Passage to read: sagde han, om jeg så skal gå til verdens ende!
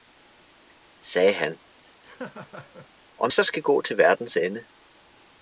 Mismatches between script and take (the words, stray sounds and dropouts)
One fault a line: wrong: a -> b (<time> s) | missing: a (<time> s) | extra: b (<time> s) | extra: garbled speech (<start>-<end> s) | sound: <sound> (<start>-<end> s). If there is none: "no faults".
sound: laugh (1.8-2.9 s)
missing: jeg (3.3 s)